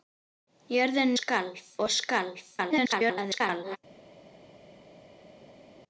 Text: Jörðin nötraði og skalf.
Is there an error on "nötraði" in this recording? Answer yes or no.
yes